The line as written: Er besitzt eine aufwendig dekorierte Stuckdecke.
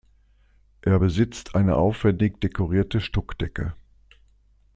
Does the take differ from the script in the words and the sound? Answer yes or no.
no